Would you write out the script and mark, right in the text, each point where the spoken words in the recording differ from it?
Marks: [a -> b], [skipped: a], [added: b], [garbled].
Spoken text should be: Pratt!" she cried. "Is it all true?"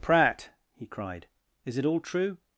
Pratt!" [she -> he] cried. "Is it all true?"